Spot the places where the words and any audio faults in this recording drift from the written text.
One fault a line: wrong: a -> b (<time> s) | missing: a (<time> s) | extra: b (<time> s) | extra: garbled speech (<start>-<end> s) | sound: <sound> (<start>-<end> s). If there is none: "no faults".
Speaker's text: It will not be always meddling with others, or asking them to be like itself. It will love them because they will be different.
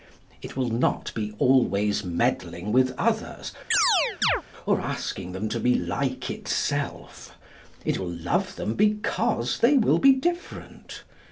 sound: chirp (3.7-4.4 s)